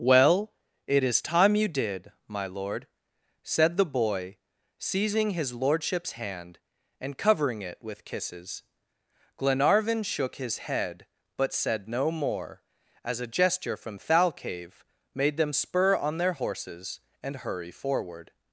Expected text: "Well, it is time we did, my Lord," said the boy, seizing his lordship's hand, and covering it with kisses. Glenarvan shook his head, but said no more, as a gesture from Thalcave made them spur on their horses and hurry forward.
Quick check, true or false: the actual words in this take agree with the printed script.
false